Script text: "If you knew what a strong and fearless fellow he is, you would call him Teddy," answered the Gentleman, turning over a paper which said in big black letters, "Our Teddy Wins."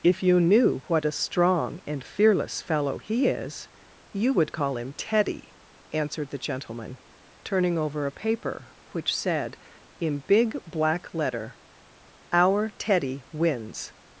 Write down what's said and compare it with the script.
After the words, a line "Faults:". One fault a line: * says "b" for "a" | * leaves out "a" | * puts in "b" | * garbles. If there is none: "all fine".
"If you knew what a strong and fearless fellow he is, you would call him Teddy," answered the Gentleman, turning over a paper which said in big black letter, "Our Teddy Wins."
Faults:
* says "letter" for "letters"